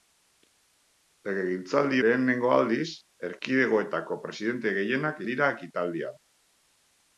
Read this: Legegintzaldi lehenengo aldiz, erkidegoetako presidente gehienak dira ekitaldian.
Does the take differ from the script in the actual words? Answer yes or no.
no